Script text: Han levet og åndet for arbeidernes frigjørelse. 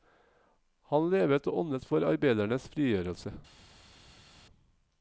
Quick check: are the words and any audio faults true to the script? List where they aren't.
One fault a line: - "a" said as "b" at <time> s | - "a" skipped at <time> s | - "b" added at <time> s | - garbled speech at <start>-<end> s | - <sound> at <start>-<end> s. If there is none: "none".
none